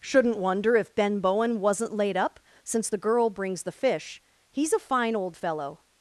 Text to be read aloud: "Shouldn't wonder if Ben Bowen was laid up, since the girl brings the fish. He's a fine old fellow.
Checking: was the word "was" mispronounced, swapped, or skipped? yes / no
yes